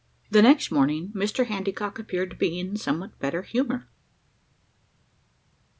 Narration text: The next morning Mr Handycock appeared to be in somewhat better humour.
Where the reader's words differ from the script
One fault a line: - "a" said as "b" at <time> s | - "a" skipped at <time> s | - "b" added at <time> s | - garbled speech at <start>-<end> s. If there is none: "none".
none